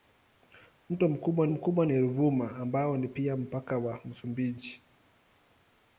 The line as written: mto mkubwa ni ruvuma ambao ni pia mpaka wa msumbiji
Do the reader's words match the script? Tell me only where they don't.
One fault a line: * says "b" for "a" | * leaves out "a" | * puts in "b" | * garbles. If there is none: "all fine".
* puts in "mkubwa"